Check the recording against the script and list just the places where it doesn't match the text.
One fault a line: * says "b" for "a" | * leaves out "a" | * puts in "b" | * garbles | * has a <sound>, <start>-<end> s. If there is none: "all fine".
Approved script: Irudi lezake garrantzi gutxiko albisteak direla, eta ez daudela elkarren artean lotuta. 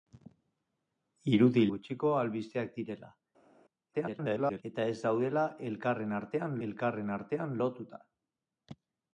* leaves out "lezake garrantzi"
* garbles
* puts in "elkarren artean"